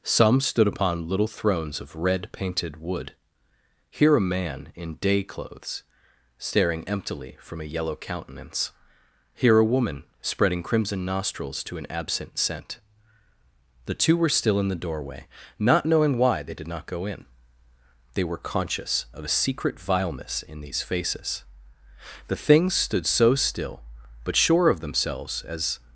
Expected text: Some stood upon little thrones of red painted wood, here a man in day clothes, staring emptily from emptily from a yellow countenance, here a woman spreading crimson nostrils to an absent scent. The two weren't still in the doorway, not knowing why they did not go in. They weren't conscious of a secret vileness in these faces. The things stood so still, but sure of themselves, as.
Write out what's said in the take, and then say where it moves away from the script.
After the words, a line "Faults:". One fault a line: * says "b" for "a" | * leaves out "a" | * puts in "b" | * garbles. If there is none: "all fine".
Some stood upon little thrones of red painted wood, here a man in day clothes, staring emptily from a yellow countenance, here a woman spreading crimson nostrils to an absent scent. The two were still in the doorway, not knowing why they did not go in. They were conscious of a secret vileness in these faces. The things stood so still, but sure of themselves, as.
Faults:
* leaves out "emptily from"
* says "were" for "weren't"
* says "were" for "weren't"